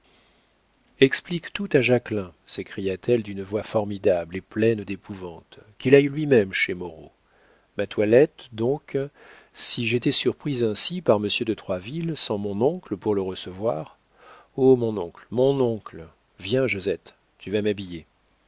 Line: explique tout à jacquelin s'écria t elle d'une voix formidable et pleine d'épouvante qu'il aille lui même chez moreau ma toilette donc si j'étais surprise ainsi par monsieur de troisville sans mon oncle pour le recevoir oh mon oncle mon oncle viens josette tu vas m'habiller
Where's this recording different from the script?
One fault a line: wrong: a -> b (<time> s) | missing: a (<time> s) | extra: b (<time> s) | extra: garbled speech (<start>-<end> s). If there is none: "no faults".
no faults